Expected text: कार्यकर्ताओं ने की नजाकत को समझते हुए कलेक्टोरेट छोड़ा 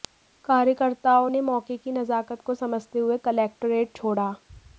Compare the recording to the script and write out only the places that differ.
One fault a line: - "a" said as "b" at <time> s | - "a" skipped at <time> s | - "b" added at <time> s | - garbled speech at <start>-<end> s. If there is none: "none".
- "मौके" added at 1.4 s